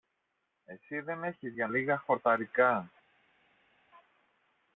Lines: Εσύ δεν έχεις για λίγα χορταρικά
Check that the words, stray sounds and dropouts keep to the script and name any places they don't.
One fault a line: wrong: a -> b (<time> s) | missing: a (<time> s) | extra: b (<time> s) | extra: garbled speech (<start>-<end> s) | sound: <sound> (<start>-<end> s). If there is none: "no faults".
no faults